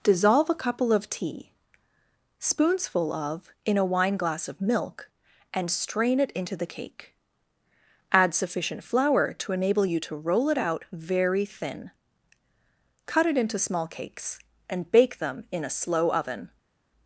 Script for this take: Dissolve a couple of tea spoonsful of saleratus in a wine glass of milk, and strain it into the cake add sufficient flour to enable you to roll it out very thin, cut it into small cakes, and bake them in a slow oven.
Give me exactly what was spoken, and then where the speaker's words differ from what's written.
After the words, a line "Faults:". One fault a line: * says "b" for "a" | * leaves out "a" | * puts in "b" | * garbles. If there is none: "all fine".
Dissolve a couple of tea spoonsful of in a wine glass of milk, and strain it into the cake add sufficient flour to enable you to roll it out very thin, cut it into small cakes, and bake them in a slow oven.
Faults:
* leaves out "saleratus"